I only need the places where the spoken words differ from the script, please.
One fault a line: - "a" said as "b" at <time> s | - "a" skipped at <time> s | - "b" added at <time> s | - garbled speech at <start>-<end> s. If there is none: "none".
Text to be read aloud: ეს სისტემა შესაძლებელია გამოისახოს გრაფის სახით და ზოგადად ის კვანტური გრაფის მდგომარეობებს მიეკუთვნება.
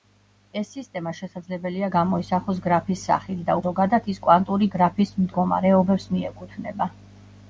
none